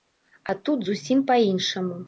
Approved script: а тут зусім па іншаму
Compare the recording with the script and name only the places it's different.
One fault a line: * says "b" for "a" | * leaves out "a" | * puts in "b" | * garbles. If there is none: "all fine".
all fine